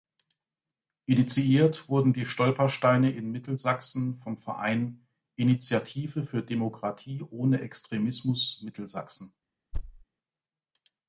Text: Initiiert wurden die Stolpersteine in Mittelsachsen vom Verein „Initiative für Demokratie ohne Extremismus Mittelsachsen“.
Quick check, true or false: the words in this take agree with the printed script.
true